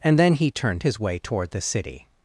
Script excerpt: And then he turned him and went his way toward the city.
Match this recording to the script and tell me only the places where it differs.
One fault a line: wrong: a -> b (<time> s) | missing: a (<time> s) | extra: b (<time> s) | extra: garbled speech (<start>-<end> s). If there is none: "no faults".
missing: him and went (0.8 s)